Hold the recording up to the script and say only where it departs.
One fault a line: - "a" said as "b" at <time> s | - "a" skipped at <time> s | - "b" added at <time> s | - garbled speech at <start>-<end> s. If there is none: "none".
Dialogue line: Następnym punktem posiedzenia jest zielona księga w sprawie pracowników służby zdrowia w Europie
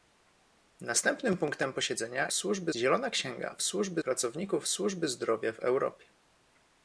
- "jest" said as "służby" at 2.3 s
- "sprawie" said as "służby" at 3.6 s